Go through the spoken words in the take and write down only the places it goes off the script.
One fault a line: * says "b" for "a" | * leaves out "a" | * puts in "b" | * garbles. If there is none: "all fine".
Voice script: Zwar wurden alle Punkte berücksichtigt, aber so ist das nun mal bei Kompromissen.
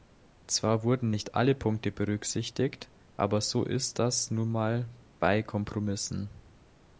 * puts in "nicht"